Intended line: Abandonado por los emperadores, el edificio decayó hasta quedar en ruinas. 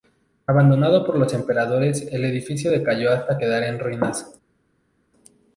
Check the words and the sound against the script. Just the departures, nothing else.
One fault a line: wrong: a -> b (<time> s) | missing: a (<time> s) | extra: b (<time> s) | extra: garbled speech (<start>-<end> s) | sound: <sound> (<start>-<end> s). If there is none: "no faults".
no faults